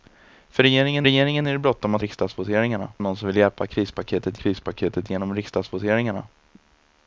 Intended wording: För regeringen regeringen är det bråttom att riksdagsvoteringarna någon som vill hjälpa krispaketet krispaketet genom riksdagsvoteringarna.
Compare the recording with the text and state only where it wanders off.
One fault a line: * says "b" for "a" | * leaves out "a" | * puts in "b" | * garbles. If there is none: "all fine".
all fine